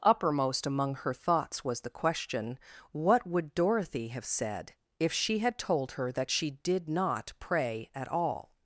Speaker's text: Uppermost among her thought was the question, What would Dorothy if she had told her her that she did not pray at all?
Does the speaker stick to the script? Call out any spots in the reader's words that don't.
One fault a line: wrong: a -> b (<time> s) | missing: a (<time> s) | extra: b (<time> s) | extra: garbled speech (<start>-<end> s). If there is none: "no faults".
wrong: thought -> thoughts (1.1 s)
extra: have said (4.1 s)
missing: her (6.1 s)